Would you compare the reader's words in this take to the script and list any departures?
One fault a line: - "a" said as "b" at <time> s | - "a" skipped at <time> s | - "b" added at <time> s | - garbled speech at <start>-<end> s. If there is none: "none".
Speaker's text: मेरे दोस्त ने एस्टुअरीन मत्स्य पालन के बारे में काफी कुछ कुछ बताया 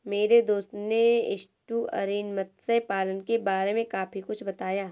- "कुछ" skipped at 4.4 s